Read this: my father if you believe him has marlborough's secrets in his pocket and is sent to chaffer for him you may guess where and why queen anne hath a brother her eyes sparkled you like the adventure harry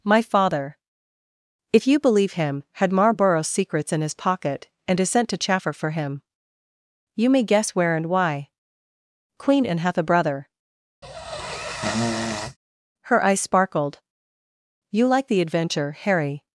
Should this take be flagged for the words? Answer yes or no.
yes